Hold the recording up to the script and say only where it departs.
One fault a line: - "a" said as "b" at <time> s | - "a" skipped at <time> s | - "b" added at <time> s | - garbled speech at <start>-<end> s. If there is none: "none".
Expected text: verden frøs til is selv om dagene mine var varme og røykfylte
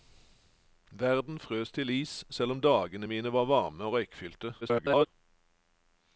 - garbled speech at 4.6-5.1 s